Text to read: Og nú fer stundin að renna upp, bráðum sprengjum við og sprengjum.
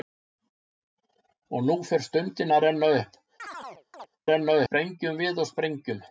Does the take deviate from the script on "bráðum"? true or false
true